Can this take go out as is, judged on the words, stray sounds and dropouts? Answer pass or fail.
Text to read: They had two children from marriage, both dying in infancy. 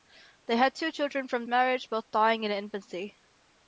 pass